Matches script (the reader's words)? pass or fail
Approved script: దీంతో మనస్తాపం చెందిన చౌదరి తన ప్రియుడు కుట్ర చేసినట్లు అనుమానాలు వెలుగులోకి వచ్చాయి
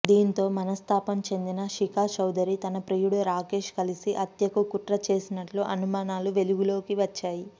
fail